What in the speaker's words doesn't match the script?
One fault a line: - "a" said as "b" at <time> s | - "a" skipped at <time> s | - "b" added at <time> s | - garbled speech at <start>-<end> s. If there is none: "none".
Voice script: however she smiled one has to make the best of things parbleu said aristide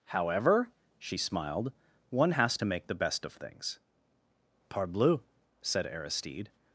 none